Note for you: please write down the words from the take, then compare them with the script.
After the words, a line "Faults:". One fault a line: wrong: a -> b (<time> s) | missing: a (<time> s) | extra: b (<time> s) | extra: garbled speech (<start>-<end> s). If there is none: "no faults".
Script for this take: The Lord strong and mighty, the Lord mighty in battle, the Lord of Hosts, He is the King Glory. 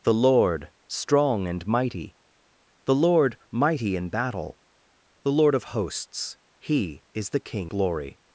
The Lord strong and mighty, the Lord mighty in battle, the Lord of Hosts, He is the King Glory.
Faults:
no faults